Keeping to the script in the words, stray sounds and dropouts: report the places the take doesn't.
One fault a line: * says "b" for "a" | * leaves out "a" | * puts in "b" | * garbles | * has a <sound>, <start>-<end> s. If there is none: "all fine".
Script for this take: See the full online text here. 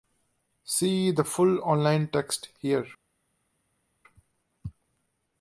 all fine